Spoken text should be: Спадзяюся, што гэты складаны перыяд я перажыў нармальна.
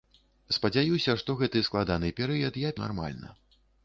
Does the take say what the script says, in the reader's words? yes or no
no